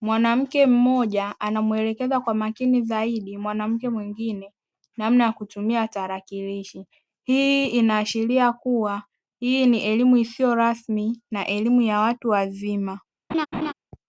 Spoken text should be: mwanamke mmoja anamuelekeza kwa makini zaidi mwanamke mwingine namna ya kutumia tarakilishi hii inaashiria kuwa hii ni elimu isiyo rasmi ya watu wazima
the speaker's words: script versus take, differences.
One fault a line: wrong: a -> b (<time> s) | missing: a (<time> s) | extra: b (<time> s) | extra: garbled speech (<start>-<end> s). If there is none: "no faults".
extra: na elimu (11.3 s)